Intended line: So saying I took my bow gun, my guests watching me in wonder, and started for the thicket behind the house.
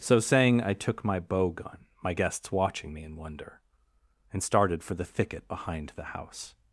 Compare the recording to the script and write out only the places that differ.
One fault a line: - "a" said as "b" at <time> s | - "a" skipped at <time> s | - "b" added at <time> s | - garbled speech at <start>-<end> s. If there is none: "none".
none